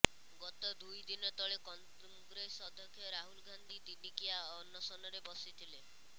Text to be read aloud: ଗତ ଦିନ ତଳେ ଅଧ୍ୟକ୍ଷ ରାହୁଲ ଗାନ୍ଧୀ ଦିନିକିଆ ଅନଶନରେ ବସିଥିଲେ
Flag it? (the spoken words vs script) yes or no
yes